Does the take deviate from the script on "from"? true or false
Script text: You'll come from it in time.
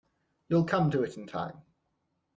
true